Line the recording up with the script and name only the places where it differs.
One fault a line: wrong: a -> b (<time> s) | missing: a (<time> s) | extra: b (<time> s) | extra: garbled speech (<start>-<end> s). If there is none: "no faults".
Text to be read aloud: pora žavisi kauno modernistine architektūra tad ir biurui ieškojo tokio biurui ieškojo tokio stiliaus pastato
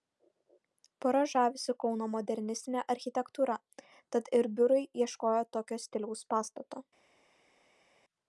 missing: biurui ieškojo tokio (5.8 s)